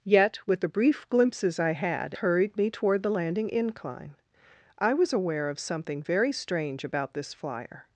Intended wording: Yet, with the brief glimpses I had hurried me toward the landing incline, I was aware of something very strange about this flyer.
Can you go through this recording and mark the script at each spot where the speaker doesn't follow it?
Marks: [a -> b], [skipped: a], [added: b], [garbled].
Yet, with the brief glimpses I had hurried me toward the landing incline, I was aware of something very strange about this flyer.